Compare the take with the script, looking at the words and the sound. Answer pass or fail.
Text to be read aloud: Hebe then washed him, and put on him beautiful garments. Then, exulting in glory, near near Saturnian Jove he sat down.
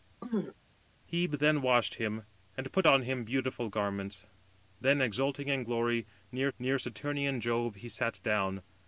fail